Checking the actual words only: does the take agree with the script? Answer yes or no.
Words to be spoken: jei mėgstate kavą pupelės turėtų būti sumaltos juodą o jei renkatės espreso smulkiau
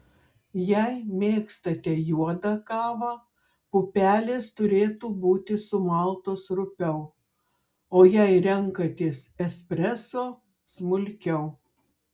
no